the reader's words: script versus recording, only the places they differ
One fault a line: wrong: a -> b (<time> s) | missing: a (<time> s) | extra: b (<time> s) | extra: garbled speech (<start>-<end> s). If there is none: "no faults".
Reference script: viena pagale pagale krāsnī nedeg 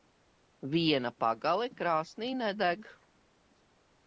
missing: pagale (1.7 s)